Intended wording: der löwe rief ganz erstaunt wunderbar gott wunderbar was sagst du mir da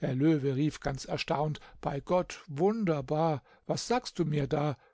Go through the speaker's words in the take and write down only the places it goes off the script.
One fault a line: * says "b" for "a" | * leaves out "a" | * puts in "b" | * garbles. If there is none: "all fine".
* says "bei" for "wunderbar"